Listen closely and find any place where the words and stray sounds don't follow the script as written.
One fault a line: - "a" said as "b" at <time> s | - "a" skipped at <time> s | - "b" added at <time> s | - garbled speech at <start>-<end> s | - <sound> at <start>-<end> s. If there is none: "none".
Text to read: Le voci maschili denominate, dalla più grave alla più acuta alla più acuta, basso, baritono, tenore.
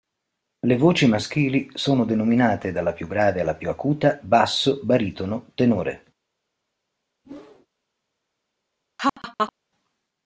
- "sono" added at 1.8 s
- "alla più acuta" skipped at 4.2 s
- whoosh at 7.2-7.7 s
- laugh at 9.0-9.5 s